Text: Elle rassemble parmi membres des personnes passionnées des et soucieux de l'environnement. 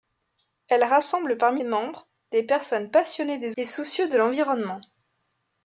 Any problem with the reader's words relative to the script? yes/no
no